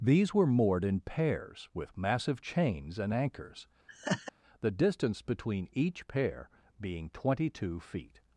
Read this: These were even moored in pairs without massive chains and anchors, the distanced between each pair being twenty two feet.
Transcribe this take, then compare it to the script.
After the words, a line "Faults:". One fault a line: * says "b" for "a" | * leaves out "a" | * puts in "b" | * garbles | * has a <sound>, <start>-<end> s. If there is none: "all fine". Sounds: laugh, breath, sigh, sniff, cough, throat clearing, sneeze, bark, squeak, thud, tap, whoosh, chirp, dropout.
These were moored in pairs with massive chains and anchors, the distance between each pair being twenty two feet.
Faults:
* leaves out "even"
* says "with" for "without"
* has a laugh, 3.9-4.3 s
* says "distance" for "distanced"